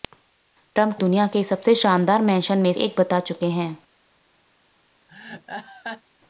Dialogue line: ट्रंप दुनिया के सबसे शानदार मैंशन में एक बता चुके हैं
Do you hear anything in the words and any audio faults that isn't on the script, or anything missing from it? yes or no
yes